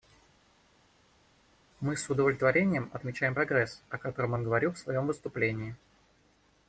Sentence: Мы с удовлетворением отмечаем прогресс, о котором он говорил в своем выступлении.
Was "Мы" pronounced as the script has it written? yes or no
yes